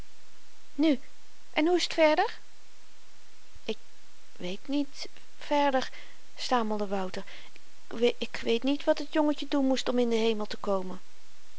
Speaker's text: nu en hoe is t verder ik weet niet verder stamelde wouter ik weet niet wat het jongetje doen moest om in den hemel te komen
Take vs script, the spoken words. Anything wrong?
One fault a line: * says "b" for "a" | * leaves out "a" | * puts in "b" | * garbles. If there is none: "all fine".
all fine